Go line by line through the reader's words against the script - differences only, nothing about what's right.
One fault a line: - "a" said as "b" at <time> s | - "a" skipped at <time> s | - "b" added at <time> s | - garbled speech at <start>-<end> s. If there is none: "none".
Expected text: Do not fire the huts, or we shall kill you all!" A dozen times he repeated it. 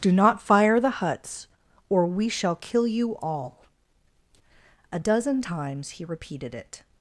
none